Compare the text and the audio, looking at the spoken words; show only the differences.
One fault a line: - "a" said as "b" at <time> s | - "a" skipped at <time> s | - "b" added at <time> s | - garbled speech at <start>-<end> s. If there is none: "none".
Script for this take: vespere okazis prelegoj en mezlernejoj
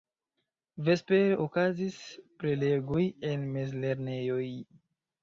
none